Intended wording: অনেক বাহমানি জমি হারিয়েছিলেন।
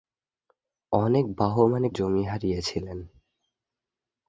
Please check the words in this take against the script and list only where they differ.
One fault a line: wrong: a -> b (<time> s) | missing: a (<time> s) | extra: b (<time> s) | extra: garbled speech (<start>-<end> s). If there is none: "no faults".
no faults